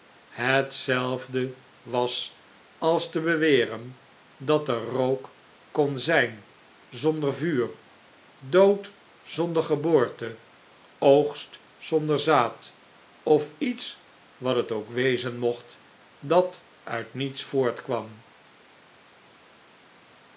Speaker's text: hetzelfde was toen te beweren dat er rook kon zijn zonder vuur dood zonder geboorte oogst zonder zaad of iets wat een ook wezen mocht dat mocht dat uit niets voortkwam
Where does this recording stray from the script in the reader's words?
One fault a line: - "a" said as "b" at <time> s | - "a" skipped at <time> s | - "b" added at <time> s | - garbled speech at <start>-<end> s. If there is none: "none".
- "toen" said as "als" at 2.8 s
- "een" said as "het" at 14.6 s
- "mocht dat" skipped at 16.6 s